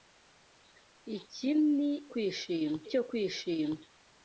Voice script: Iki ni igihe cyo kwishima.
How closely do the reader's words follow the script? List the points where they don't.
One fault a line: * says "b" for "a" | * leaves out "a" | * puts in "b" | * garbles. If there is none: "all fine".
* says "kwishima" for "igihe"